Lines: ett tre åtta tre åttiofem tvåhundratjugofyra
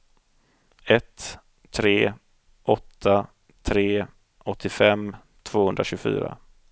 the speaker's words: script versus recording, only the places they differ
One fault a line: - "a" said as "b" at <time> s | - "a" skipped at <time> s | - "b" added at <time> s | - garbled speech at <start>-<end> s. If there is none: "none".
none